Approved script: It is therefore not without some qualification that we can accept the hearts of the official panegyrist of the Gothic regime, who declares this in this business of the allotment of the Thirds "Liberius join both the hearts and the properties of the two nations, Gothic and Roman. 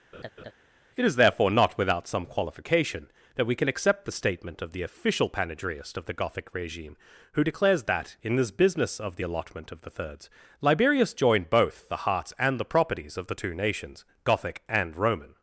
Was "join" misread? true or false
true